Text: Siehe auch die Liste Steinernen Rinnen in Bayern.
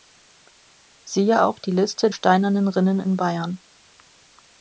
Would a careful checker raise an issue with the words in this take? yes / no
no